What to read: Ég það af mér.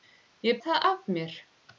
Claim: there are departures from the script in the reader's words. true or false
false